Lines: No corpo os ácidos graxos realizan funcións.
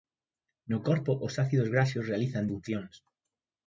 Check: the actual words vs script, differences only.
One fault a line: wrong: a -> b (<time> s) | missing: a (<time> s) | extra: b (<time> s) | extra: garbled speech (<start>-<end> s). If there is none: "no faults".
no faults